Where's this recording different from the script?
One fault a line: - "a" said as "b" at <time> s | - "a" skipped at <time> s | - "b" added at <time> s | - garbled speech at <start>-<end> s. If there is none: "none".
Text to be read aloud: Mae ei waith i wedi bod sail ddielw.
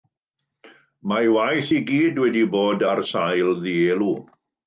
- "gyd" added at 1.9 s
- "ar" added at 2.9 s